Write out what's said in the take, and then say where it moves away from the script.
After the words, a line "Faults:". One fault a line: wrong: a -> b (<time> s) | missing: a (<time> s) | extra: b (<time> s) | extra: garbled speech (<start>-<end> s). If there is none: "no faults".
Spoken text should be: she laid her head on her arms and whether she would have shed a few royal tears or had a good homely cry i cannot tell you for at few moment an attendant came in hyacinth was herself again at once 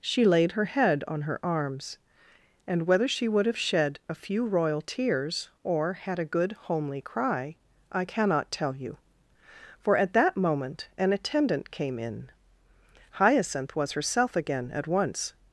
she laid her head on her arms and whether she would have shed a few royal tears or had a good homely cry i cannot tell you for at that moment an attendant came in hyacinth was herself again at once
Faults:
wrong: few -> that (10.1 s)